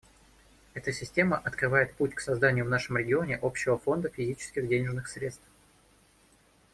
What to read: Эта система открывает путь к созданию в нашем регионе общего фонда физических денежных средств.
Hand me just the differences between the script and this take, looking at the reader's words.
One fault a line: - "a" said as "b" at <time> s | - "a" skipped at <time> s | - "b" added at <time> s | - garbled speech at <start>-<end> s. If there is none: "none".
none